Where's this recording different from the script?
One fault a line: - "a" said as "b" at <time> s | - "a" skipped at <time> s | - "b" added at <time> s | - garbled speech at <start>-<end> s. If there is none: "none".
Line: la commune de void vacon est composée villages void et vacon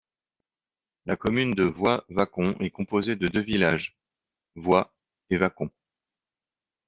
- "de deux" added at 3.2 s